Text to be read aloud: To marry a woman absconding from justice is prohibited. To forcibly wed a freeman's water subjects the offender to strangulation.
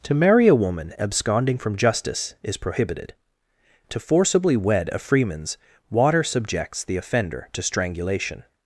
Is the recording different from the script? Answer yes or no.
no